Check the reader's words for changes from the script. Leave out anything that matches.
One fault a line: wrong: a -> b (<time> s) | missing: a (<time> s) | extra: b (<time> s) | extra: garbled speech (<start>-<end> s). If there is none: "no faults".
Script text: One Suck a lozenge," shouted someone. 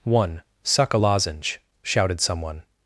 no faults